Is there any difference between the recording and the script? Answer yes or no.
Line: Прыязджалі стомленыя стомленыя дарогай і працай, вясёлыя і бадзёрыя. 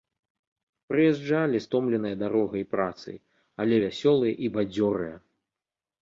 yes